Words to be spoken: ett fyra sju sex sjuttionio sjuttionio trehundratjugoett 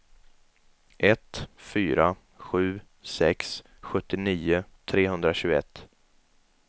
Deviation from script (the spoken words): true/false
true